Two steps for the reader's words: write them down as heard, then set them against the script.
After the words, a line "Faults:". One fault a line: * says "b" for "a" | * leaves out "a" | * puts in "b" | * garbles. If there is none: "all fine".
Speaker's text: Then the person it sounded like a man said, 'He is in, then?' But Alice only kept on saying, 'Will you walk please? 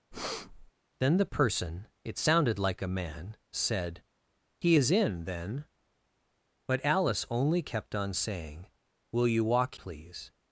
Then the person it sounded like a man said, 'He is in, then?' But Alice only kept on saying, 'Will you walk please?
Faults:
all fine